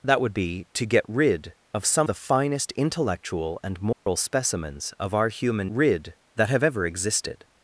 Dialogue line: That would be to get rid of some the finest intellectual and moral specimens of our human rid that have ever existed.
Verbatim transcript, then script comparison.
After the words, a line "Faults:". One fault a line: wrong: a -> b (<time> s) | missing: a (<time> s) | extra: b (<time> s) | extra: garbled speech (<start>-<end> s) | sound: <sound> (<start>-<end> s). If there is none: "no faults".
That would be to get rid of some the finest intellectual and moral specimens of our human rid that have ever existed.
Faults:
sound: dropout (3.9-4.1 s)